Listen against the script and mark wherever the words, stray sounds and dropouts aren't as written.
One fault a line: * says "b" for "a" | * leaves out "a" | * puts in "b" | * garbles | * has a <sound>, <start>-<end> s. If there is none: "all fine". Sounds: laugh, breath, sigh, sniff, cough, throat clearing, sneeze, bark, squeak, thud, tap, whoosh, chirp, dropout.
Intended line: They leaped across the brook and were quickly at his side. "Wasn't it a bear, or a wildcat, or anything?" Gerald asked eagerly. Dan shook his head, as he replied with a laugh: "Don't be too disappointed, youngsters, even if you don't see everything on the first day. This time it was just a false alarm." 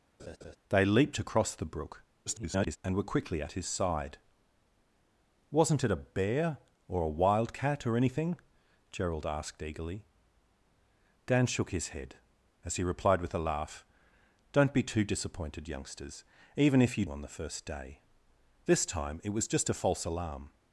* has a laugh, 0.2-0.6 s
* garbles
* leaves out "don't see everything"